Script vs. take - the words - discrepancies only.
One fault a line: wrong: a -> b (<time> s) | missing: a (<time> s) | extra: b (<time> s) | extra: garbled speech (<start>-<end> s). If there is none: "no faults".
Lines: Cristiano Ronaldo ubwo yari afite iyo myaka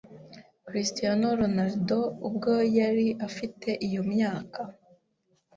no faults